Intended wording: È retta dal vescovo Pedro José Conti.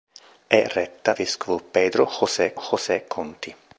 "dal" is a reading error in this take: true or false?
true